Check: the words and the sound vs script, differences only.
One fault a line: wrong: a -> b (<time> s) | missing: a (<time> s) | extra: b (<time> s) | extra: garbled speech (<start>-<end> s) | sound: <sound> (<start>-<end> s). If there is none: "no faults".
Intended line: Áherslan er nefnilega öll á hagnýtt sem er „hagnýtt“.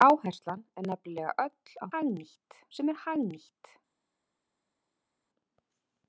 no faults